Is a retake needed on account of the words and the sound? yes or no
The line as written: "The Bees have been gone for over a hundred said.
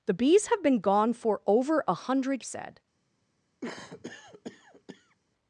yes